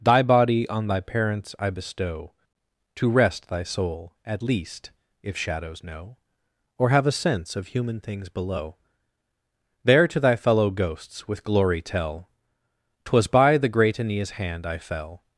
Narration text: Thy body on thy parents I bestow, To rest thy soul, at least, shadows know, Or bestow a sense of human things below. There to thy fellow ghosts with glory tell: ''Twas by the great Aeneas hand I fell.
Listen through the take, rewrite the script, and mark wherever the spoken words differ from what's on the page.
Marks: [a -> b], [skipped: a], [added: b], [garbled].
Thy body on thy parents I bestow, To rest thy soul, at least, [added: if] shadows know, Or [bestow -> have] a sense of human things below. There to thy fellow ghosts with glory tell: ''Twas by the great Aeneas hand I fell.